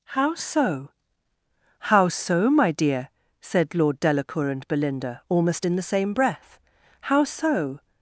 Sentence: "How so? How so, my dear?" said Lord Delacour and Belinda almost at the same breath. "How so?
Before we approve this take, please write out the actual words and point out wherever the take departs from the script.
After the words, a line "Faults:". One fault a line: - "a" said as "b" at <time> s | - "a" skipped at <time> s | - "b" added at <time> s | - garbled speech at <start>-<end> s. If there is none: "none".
"How so? How so, my dear?" said Lord Delacour and Belinda almost in the same breath. "How so?
Faults:
- "at" said as "in" at 5.6 s